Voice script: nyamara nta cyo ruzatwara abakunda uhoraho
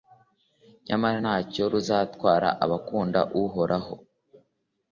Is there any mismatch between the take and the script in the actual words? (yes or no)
no